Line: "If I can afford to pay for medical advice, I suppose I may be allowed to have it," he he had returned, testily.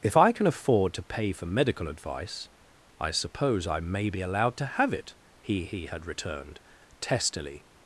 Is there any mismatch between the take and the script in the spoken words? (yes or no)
no